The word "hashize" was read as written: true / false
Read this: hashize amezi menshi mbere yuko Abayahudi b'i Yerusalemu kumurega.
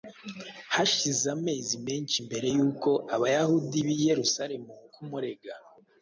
true